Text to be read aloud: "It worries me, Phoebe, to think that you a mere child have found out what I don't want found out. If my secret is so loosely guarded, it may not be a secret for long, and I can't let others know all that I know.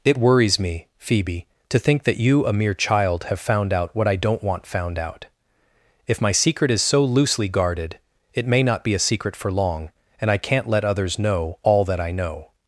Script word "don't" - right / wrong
right